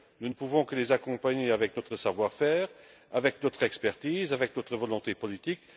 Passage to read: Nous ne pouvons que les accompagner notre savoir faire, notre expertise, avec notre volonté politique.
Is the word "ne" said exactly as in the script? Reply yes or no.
yes